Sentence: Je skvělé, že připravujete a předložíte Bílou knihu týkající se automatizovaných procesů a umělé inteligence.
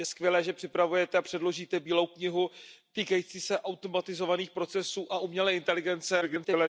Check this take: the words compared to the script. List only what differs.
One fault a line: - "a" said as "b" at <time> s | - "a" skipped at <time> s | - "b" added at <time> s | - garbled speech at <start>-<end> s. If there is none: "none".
- garbled speech at 6.2-6.7 s